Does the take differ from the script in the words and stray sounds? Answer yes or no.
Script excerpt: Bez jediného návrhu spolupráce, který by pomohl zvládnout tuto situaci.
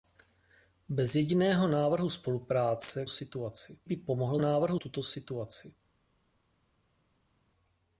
yes